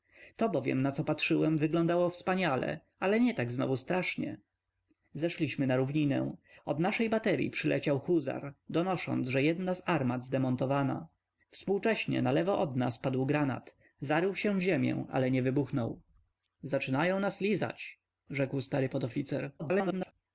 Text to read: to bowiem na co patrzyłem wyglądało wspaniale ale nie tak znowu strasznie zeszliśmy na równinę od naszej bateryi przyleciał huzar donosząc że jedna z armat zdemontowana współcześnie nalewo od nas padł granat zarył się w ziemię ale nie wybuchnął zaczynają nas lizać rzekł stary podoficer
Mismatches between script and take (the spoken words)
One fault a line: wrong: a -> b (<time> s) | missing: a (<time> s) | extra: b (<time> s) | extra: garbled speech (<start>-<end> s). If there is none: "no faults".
extra: garbled speech (19.6-20.1 s)